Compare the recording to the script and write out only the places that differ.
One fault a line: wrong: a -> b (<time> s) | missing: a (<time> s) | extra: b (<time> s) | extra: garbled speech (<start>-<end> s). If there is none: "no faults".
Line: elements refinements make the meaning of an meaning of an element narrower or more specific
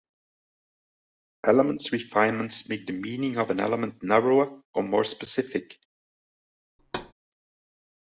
missing: meaning of an (3.6 s)